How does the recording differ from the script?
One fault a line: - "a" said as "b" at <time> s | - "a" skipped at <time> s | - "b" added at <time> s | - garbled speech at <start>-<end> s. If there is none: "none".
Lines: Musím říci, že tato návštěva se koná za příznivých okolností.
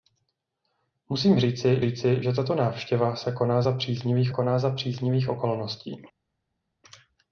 - "říci" added at 1.8 s
- "koná za příznivých" added at 4.3 s